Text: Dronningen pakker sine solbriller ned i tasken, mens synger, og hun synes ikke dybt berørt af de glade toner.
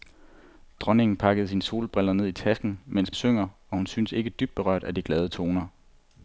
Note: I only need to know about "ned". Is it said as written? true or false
true